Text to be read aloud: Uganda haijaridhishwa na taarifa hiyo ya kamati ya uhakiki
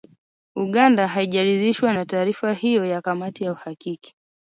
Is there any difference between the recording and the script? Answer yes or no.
no